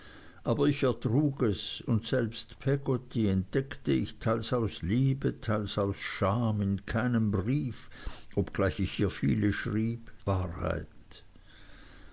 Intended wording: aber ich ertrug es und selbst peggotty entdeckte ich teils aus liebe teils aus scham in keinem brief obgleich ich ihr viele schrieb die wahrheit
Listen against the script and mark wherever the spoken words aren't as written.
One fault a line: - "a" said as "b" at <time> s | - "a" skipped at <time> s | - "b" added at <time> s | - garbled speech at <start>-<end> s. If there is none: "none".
- "die" skipped at 10.1 s